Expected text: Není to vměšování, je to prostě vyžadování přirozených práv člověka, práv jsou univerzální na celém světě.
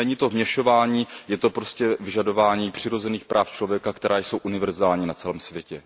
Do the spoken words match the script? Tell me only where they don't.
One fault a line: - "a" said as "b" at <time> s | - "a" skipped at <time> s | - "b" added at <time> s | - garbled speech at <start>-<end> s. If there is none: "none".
- "práv" said as "která" at 3.9 s